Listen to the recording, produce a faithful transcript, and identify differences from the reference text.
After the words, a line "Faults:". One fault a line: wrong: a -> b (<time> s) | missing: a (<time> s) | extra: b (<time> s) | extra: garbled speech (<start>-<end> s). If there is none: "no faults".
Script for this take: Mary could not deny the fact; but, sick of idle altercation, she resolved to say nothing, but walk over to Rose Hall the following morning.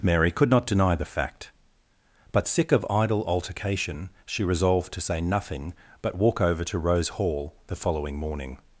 Mary could not deny the fact; but, sick of idle altercation, she resolved to say nothing, but walk over to Rose Hall the following morning.
Faults:
no faults